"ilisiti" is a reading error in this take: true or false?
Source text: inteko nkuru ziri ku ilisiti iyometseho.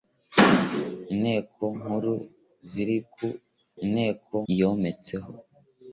true